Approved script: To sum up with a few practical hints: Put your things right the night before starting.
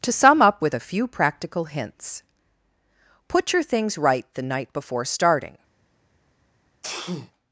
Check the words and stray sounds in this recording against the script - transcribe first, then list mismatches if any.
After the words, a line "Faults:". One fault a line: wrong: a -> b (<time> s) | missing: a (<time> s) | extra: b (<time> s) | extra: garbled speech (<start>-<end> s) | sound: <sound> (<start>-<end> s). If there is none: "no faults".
To sum up with a few practical hints: Put your things right the night before starting.
Faults:
sound: sneeze (6.8-7.3 s)